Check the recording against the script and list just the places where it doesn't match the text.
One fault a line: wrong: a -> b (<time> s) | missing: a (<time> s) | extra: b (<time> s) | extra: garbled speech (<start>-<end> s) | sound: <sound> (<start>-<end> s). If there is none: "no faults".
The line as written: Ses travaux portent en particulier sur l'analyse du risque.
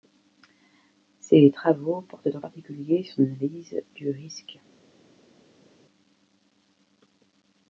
no faults